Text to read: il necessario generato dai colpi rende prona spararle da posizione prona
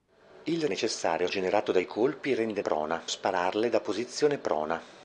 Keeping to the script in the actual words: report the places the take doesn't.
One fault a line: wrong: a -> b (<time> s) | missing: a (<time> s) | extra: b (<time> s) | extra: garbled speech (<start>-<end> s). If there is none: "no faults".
no faults